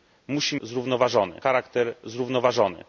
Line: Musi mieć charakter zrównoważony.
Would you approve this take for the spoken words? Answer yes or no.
no